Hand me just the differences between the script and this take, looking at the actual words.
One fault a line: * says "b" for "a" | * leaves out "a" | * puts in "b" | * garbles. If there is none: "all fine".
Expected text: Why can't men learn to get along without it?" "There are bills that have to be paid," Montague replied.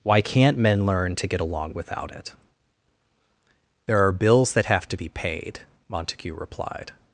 all fine